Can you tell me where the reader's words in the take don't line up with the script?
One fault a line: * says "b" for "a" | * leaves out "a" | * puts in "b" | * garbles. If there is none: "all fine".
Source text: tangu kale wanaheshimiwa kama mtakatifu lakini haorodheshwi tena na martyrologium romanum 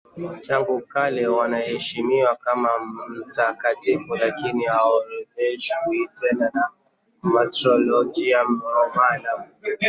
all fine